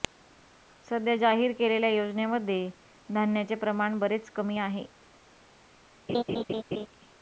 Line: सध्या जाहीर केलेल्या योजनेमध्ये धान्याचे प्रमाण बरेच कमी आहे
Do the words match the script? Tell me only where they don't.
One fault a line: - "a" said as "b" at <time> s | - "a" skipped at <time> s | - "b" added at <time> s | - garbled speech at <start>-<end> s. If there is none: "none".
none